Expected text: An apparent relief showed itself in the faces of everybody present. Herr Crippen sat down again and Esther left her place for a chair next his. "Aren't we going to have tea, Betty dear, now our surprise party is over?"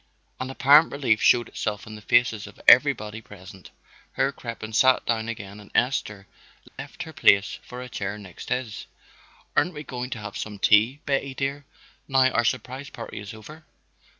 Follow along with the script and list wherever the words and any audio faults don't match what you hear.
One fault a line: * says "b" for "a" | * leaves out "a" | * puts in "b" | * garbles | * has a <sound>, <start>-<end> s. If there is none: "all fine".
* has a dropout, 6.7-6.8 s
* puts in "some"